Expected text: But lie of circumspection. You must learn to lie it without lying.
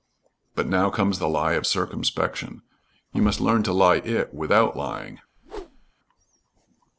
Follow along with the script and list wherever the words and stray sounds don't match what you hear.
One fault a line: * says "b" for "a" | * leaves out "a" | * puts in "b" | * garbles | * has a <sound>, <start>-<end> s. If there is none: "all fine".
* puts in "now comes the"
* has a whoosh, 5.4-5.9 s